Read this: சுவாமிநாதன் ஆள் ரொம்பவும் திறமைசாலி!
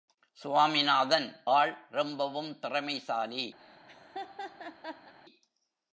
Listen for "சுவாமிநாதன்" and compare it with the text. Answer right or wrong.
right